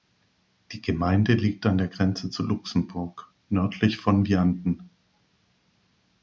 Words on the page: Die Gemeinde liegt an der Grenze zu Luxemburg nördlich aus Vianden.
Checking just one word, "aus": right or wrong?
wrong